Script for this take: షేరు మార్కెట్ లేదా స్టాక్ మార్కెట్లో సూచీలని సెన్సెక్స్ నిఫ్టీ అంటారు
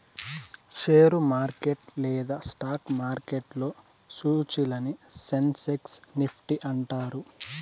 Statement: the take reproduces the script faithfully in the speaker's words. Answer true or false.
true